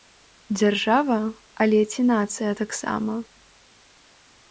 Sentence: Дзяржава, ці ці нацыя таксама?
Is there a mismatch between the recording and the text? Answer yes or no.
yes